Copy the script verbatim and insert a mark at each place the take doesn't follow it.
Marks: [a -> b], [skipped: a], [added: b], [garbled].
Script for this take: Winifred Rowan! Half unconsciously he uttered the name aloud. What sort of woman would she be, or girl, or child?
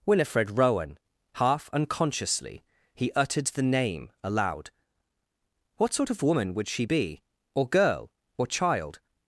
Winifred Rowan! Half unconsciously he uttered the name aloud. What sort of woman would she be, or girl, or child?